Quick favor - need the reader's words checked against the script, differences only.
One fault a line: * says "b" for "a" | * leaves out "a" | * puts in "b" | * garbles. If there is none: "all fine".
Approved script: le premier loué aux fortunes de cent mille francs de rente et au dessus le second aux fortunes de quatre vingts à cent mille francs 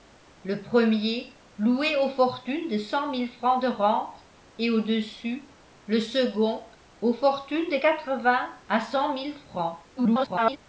* garbles